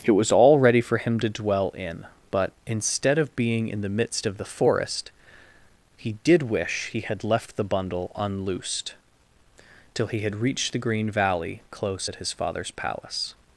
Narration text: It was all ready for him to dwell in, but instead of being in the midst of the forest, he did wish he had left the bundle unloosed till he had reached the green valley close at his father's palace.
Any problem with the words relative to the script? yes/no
no